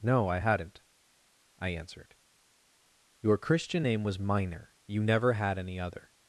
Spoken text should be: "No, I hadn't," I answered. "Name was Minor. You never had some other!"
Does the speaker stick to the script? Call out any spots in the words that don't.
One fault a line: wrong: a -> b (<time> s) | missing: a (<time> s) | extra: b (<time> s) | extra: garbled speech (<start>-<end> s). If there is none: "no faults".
extra: Your Christian (3.2 s)
wrong: some -> any (5.6 s)